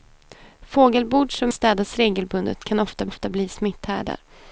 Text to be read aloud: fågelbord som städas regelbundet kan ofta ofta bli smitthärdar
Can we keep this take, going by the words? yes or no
yes